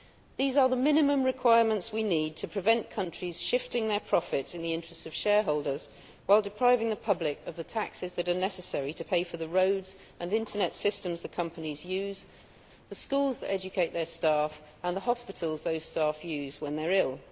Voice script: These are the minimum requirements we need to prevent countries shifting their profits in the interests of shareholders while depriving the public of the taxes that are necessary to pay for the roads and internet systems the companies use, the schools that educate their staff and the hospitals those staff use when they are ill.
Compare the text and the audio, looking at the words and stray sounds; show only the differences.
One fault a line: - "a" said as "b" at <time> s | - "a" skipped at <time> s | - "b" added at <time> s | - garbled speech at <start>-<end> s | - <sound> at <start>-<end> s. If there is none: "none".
none